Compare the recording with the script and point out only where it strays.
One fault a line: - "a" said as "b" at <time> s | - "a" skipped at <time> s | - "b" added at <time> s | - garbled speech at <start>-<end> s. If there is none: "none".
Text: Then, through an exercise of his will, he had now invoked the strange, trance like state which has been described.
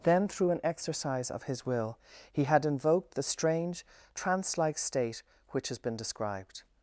- "now" skipped at 2.6 s